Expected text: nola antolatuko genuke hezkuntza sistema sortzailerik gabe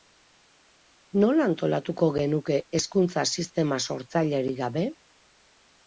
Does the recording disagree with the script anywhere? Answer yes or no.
no